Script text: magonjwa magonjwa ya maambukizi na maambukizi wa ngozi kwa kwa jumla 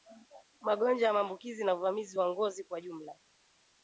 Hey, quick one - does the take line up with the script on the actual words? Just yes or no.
no